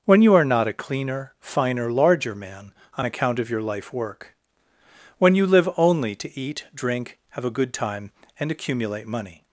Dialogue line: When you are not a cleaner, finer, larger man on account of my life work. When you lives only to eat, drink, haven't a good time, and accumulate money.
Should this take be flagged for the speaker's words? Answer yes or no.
yes